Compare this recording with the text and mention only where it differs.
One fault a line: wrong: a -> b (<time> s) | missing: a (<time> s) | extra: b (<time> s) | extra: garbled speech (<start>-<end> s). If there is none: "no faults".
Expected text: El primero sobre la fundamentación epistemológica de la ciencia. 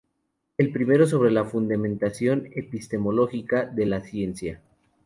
no faults